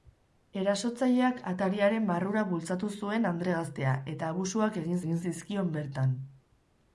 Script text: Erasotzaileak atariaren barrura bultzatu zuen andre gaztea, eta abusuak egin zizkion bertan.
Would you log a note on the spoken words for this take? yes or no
yes